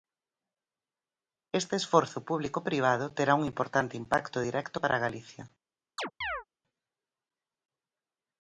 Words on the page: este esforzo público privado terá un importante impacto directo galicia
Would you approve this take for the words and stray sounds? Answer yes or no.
no